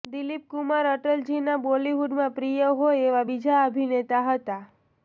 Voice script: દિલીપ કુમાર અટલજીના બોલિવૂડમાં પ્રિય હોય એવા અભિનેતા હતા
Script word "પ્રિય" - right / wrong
right